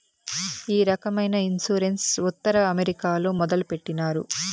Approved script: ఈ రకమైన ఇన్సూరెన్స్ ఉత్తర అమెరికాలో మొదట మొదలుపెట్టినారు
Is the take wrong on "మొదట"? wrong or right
wrong